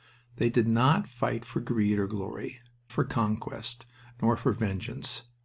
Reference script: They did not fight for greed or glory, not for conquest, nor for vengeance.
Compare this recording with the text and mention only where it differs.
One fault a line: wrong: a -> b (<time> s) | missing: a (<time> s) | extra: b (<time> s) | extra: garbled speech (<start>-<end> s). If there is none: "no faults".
missing: not (2.6 s)